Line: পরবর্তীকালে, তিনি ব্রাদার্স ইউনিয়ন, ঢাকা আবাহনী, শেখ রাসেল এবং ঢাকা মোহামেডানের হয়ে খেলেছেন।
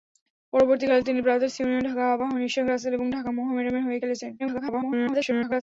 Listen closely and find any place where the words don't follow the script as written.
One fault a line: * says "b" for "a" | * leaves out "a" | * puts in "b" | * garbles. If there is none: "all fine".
* garbles